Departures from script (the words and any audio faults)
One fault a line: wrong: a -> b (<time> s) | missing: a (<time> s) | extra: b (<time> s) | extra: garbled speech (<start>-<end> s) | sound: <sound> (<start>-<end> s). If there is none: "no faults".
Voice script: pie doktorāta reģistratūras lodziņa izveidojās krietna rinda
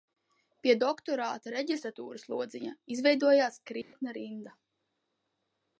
sound: dropout (3.8-3.9 s)